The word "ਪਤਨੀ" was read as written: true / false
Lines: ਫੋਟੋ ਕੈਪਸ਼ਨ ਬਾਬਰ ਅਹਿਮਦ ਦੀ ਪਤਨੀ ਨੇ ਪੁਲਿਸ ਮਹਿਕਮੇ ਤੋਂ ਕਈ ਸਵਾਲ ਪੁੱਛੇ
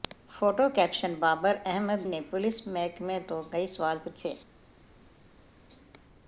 false